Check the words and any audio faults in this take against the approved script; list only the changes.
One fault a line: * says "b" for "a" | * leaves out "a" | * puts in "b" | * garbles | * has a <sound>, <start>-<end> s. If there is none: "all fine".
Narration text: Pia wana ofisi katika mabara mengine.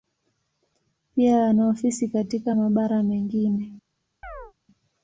* has a chirp, 4.2-4.5 s